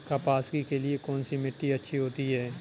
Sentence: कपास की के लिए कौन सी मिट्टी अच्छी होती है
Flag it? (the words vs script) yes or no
no